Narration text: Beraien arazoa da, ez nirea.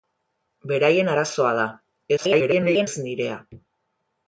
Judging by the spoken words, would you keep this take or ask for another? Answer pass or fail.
fail